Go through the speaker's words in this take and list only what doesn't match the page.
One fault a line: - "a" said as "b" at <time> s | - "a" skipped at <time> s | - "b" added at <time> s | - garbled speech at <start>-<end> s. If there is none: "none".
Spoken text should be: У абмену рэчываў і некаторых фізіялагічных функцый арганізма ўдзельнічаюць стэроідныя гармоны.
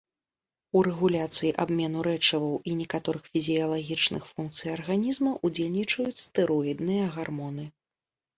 - "рэгуляцыі" added at 0.8 s